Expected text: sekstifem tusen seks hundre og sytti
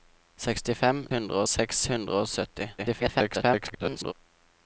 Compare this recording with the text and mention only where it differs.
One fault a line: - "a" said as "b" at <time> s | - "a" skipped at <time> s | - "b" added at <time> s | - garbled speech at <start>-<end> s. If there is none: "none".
- "tusen" said as "hundre" at 1.1 s
- garbled speech at 2.8-4.1 s